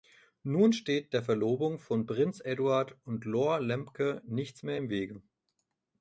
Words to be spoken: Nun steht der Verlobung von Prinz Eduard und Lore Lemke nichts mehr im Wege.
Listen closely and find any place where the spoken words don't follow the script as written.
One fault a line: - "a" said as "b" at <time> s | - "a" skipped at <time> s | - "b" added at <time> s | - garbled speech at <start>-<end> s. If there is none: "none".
none